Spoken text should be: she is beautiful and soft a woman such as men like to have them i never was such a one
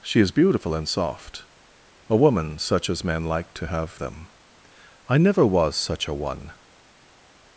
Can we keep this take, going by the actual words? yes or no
yes